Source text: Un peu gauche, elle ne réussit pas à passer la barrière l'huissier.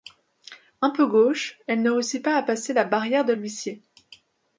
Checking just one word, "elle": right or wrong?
right